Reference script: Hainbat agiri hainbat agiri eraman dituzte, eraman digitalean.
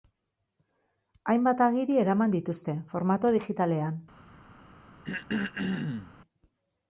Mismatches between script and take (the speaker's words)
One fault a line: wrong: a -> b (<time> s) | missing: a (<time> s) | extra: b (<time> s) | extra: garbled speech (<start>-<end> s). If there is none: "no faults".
missing: hainbat agiri (2.0 s)
wrong: eraman -> formato (3.0 s)